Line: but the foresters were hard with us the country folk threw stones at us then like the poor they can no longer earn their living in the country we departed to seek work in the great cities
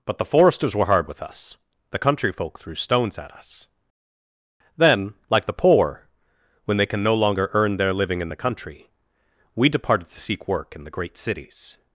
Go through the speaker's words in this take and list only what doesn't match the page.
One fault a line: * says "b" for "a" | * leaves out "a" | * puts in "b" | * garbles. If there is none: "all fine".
* puts in "when"